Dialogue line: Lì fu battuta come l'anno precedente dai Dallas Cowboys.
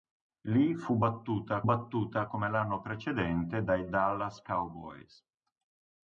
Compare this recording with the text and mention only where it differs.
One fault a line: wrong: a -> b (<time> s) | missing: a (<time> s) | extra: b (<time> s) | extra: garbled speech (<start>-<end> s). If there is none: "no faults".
extra: battuta (1.6 s)